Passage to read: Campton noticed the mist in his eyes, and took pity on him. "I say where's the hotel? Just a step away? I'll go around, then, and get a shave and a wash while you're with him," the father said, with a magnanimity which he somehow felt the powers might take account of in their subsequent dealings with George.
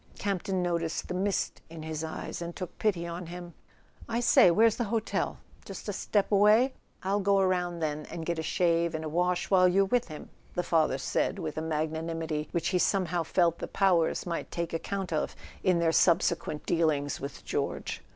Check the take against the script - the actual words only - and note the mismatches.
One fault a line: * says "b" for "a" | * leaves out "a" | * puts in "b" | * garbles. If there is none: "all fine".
all fine